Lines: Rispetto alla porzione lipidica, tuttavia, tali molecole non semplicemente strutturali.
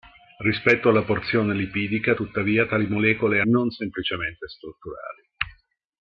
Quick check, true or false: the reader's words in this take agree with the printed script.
true